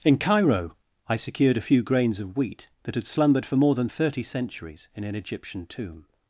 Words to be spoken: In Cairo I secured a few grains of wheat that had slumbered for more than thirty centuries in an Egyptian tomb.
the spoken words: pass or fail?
pass